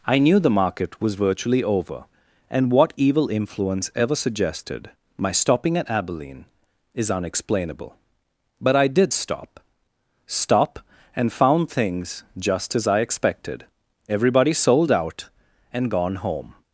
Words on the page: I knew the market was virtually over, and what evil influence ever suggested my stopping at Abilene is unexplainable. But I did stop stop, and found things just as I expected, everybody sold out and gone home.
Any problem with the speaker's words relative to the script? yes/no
no